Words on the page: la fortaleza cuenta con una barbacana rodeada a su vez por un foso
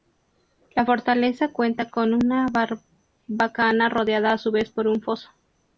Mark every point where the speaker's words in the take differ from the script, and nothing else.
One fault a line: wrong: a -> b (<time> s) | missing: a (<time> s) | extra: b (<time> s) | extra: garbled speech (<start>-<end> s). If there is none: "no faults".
no faults